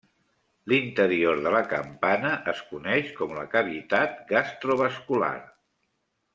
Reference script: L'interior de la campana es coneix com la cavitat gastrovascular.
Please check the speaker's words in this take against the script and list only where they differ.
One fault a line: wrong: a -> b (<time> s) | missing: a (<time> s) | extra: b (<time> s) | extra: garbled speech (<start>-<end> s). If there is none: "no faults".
no faults